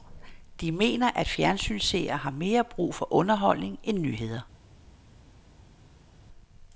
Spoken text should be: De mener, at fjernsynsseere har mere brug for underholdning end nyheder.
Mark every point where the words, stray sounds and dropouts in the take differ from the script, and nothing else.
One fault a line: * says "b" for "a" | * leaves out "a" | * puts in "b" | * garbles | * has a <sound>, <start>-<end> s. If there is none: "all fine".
all fine